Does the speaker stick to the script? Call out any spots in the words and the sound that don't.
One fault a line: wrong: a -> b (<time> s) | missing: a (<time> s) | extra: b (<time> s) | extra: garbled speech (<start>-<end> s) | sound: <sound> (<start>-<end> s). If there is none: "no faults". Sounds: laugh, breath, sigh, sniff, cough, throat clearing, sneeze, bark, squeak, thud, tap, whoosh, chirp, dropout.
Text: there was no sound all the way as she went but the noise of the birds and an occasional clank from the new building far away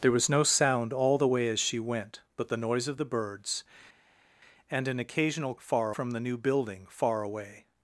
wrong: clank -> far (5.6 s)